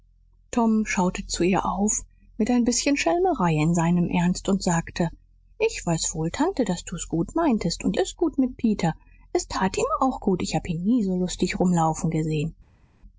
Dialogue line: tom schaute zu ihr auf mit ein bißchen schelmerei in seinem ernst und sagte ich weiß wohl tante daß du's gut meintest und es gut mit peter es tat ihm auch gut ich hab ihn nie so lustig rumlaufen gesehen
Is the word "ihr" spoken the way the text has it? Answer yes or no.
yes